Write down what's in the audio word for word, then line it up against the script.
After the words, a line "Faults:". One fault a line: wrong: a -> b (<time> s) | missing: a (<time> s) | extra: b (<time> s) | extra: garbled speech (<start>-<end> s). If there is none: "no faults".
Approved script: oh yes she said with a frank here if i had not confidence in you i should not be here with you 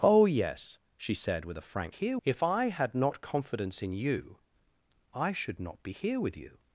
oh yes she said with a frank here if i had not confidence in you i should not be here with you
Faults:
no faults